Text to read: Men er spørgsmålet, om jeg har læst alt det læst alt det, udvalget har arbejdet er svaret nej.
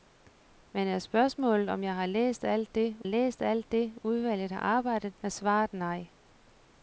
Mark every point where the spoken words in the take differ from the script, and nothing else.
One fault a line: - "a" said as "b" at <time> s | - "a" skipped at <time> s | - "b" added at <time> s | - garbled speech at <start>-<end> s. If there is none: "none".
none